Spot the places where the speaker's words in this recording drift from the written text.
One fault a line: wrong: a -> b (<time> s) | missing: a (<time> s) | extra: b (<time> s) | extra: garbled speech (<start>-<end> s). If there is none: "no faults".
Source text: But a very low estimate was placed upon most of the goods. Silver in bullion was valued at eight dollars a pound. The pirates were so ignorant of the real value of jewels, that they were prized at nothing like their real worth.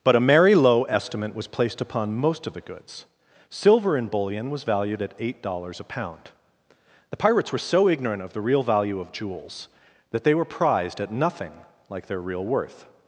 wrong: very -> merry (0.2 s)